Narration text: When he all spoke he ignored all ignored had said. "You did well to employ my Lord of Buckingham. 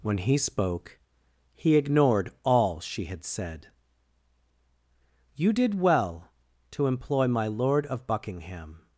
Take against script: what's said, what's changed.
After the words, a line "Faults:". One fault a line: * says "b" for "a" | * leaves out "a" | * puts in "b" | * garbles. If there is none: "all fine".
When he spoke he ignored all she had said. "You did well to employ my Lord of Buckingham.
Faults:
* leaves out "all"
* says "she" for "ignored"